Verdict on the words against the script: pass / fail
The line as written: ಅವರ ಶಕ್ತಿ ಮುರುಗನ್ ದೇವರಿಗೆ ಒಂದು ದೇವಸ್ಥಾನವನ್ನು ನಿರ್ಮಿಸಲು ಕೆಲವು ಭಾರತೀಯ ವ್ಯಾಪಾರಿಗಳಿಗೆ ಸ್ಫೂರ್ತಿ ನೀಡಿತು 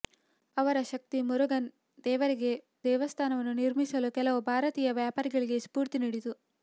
fail